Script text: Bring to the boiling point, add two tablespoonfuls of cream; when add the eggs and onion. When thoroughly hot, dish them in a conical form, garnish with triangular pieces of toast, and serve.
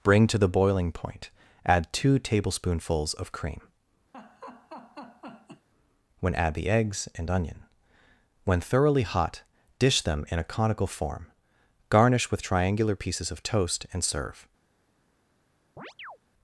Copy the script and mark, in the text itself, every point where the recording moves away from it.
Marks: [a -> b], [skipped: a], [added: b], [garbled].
Bring to the boiling point, add two tablespoonfuls of cream; when add the eggs and onion. When thoroughly hot, dish them in a conical form, garnish with triangular pieces of toast, and serve.